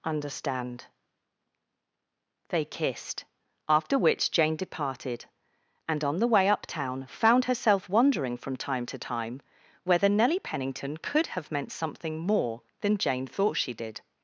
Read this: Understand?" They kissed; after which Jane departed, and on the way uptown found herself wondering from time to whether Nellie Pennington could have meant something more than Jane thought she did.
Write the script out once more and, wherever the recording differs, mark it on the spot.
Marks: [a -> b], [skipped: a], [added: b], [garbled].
Understand?" They kissed; after which Jane departed, and on the way uptown found herself wondering from time to [added: time] whether Nellie Pennington could have meant something more than Jane thought she did.